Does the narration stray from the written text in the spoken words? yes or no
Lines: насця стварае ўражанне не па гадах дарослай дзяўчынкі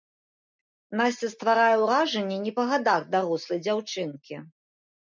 no